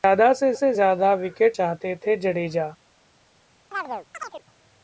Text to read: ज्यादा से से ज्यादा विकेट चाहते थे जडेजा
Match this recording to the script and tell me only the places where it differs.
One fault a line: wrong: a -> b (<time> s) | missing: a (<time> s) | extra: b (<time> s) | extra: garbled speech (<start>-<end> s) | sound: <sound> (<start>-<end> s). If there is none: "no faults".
sound: chirp (3.7-4.4 s)